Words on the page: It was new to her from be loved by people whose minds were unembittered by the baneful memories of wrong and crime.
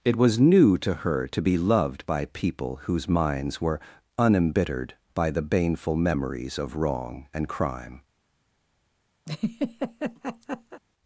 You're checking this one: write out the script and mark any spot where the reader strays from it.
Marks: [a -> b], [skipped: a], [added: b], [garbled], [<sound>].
It was new to her [from -> to] be loved by people whose minds were unembittered by the baneful memories of wrong and crime. [laugh]